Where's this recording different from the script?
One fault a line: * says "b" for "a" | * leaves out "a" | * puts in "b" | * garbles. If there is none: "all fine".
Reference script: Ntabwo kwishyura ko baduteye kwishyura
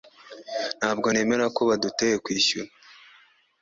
* says "nemera" for "kwishyura"